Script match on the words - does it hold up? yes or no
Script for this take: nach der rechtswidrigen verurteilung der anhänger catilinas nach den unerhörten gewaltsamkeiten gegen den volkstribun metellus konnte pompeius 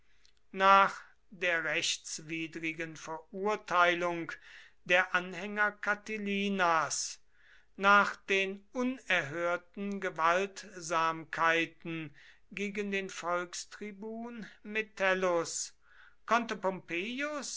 yes